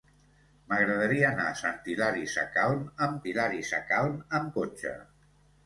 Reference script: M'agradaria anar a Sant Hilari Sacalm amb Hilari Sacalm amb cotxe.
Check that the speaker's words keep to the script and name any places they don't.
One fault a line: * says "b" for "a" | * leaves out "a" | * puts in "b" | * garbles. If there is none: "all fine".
all fine